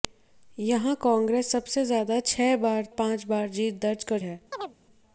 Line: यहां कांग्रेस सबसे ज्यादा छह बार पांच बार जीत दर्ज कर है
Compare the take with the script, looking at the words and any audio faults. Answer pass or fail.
fail